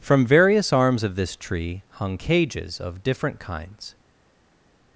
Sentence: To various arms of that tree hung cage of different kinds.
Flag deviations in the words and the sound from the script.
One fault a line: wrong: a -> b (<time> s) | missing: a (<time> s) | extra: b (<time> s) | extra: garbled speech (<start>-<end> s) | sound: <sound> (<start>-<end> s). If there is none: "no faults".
wrong: To -> From (0.0 s)
wrong: that -> this (1.1 s)
wrong: cage -> cages (2.1 s)